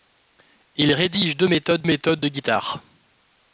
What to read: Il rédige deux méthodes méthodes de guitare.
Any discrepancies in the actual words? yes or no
no